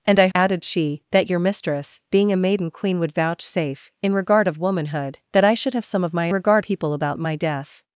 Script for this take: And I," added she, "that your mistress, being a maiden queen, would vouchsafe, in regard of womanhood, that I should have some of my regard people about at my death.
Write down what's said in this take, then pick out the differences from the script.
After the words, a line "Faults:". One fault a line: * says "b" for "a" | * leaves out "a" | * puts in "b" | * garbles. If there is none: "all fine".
And I," added she, "that your mistress, being a maiden queen, would vouchsafe, in regard of womanhood, that I should have some of my regard people about at my death.
Faults:
all fine